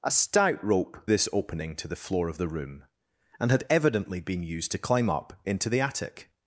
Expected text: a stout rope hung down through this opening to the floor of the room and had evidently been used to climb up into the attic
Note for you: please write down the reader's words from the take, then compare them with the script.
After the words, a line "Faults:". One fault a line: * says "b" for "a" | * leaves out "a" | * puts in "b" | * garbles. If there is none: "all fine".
a stout rope this opening to the floor of the room and had evidently been used to climb up into the attic
Faults:
* leaves out "hung down through"